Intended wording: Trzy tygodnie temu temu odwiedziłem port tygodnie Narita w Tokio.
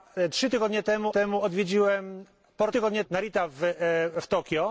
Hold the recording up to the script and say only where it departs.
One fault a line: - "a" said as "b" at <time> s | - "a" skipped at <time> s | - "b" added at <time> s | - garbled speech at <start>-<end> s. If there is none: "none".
none